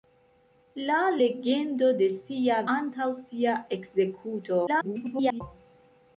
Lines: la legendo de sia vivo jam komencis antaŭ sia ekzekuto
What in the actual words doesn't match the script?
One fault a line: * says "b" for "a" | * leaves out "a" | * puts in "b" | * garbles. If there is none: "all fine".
* leaves out "vivo jam komencis"
* garbles